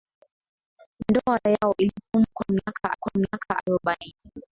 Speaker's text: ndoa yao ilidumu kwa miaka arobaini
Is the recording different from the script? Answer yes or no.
yes